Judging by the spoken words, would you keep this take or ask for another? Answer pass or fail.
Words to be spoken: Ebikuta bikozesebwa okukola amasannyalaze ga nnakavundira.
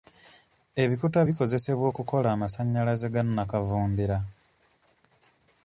pass